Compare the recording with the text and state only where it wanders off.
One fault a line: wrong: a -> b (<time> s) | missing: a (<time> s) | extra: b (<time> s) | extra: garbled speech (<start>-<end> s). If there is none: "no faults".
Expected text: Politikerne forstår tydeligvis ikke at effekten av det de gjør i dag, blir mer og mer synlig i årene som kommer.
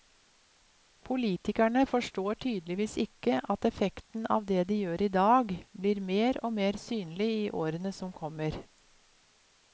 no faults